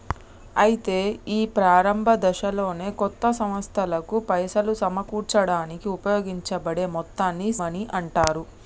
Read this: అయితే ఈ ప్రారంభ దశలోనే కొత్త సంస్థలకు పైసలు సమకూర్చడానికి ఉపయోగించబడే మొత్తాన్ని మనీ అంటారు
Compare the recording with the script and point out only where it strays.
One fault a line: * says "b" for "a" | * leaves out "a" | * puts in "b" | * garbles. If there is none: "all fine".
all fine